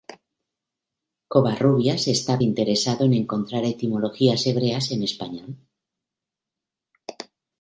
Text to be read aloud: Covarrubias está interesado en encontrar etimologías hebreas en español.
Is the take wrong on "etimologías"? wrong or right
right